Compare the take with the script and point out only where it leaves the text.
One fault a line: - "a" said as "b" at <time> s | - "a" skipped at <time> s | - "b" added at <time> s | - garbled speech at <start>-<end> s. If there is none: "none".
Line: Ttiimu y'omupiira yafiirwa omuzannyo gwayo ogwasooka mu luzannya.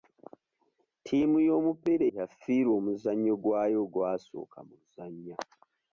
none